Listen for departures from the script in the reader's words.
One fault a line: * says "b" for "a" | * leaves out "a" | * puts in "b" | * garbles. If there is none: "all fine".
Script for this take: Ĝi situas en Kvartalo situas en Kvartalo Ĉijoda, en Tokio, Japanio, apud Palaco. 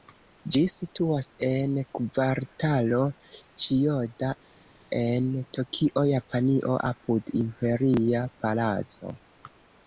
* leaves out "situas en Kvartalo"
* puts in "Imperia"